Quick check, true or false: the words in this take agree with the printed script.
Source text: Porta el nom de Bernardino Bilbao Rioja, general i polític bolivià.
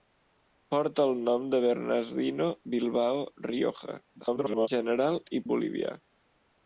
false